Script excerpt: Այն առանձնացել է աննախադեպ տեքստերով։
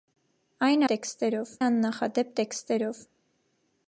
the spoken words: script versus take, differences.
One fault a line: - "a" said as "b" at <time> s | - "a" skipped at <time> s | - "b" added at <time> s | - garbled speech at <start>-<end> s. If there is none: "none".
- "առանձնացել" said as "տեքստերով" at 0.9 s